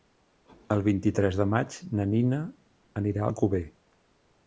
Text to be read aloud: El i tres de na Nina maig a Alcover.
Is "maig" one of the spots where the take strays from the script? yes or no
yes